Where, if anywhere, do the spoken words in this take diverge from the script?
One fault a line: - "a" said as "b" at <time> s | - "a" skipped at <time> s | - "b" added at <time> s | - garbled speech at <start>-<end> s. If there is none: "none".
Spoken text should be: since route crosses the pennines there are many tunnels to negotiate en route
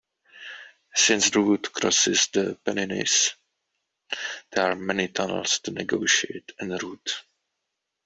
none